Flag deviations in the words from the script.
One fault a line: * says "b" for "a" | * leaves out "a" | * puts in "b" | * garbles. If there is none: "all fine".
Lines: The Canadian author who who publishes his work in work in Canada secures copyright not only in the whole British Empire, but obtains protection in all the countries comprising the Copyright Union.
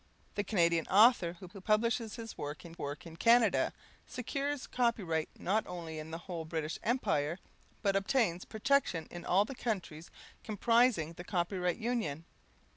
all fine